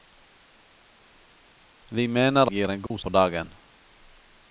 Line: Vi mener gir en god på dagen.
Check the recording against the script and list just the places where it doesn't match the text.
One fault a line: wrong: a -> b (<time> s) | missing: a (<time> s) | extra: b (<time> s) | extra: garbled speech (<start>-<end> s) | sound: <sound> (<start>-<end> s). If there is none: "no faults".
sound: dropout (2.9-2.9 s)